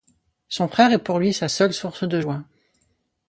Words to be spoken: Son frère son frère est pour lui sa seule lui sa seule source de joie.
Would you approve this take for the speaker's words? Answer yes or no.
no